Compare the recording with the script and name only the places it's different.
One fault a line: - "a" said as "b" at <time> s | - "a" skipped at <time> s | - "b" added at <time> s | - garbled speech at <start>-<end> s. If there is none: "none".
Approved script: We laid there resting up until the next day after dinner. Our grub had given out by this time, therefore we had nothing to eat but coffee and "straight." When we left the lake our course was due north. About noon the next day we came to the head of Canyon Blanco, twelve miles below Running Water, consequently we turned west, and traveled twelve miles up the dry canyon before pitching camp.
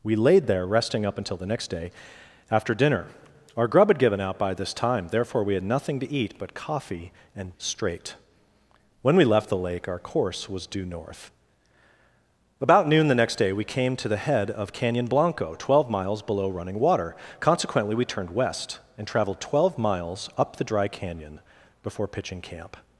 none